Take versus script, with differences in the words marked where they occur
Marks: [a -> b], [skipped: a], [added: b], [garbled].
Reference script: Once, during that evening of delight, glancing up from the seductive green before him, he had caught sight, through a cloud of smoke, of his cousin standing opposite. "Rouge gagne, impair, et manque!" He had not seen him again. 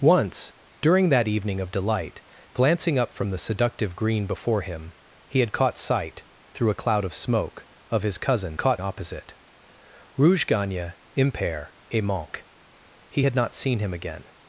Once, during that evening of delight, glancing up from the seductive green before him, he had caught sight, through a cloud of smoke, of his cousin [standing -> caught] opposite. "Rouge gagne, impair, et manque!" He had not seen him again.